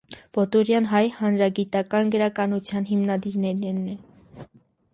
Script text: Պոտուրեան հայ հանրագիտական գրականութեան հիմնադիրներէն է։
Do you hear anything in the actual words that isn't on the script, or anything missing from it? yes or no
no